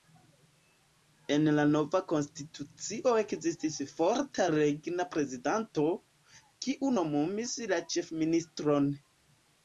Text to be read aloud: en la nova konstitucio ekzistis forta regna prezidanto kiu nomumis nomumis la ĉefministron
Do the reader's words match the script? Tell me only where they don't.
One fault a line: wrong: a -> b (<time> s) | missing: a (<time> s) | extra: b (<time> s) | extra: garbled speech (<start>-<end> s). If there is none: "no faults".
missing: nomumis (7.5 s)